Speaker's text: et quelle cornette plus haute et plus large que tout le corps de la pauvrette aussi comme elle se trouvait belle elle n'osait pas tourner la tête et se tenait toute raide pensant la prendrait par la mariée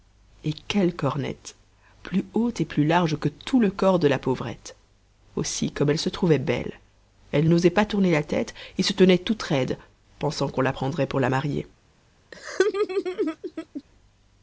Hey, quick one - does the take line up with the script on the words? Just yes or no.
no